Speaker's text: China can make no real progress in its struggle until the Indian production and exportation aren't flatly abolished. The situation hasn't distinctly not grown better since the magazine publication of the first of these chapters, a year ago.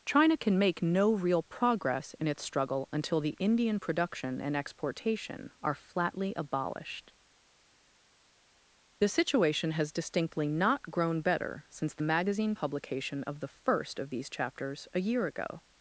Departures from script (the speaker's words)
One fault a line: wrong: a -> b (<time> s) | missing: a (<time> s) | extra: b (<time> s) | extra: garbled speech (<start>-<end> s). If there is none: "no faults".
wrong: aren't -> are (5.6 s)
wrong: hasn't -> has (9.7 s)